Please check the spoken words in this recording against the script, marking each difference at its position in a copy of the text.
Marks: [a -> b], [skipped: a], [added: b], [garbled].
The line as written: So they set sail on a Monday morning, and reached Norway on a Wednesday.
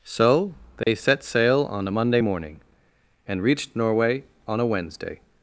So they set sail on a Monday morning, and reached Norway on a Wednesday.